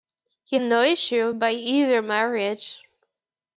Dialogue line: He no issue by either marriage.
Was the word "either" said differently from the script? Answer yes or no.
no